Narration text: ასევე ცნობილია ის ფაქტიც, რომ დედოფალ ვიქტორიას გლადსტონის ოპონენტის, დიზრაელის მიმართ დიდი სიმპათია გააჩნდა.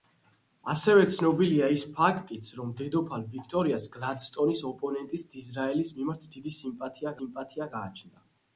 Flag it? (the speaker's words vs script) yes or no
yes